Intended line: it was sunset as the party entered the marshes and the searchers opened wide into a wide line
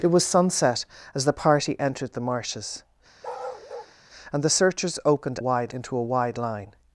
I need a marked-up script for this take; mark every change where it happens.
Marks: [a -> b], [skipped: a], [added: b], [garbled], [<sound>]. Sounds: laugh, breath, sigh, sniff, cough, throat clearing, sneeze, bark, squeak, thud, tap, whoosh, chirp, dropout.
it was sunset as the party entered the marshes [bark] and the searchers opened wide into a wide line